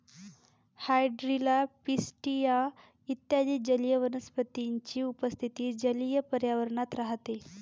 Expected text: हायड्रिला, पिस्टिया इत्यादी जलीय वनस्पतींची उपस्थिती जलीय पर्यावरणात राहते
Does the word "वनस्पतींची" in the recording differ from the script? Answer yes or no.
no